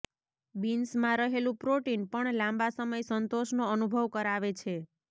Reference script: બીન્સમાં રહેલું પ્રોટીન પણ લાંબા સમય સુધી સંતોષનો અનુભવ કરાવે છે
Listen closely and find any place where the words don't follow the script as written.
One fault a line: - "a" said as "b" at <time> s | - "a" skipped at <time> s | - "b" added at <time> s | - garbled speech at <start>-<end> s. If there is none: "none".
- "સુધી" skipped at 3.0 s